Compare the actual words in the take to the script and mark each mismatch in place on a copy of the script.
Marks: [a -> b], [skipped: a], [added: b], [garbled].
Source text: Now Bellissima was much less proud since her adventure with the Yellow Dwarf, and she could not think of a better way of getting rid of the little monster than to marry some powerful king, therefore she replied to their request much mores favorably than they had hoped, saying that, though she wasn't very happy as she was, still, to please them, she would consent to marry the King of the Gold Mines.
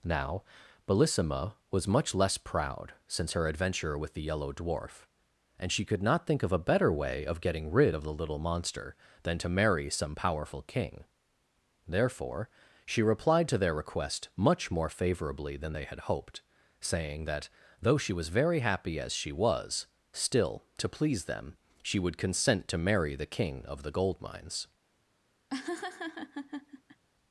Now Bellissima was much less proud since her adventure with the Yellow Dwarf, and she could not think of a better way of getting rid of the little monster than to marry some powerful king, therefore she replied to their request much [mores -> more] favorably than they had hoped, saying that, though she [wasn't -> was] very happy as she was, still, to please them, she would consent to marry the King of the Gold Mines.